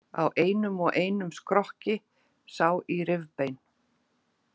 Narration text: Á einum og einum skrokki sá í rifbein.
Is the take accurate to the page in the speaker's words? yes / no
yes